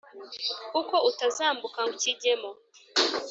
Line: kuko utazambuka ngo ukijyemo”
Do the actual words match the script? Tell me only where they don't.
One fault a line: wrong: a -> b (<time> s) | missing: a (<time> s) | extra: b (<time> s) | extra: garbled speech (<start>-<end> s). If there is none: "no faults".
missing: ngo (1.8 s)